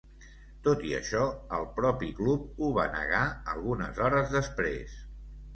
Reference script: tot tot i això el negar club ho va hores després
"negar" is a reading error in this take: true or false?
true